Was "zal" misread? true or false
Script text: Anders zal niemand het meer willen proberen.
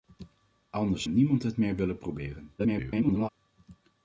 true